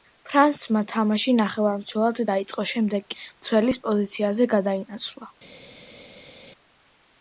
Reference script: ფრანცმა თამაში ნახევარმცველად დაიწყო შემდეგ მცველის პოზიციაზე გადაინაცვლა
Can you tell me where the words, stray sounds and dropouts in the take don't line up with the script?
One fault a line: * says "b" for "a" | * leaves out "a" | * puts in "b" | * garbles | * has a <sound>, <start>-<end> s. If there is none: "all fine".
all fine